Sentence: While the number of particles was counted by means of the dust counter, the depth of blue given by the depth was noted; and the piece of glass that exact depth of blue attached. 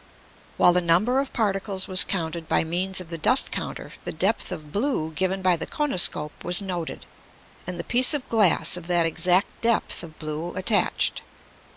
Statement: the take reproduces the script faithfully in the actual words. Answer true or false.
false